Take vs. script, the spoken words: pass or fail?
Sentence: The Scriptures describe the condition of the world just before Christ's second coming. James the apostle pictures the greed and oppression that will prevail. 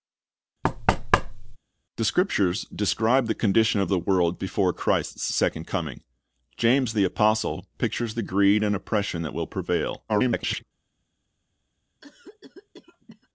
fail